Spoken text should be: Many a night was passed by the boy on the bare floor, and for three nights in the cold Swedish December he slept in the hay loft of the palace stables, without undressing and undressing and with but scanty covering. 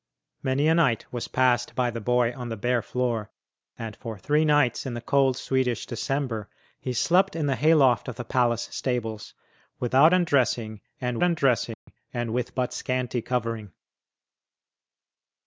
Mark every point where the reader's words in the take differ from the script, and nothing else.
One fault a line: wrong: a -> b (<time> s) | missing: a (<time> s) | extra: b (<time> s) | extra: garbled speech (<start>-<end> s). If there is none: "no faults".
no faults